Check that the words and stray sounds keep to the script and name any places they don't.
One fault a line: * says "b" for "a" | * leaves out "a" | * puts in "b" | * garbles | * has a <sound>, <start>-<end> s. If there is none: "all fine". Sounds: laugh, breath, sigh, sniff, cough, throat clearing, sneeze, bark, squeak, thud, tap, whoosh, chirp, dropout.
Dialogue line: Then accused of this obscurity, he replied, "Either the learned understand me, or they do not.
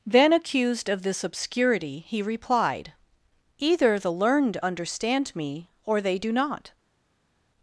all fine